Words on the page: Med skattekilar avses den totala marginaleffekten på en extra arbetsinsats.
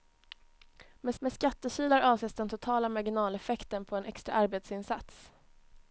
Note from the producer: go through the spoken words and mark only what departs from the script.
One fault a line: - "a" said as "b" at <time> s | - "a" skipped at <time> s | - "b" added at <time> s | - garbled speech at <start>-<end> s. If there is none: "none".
- "med" added at 1.2 s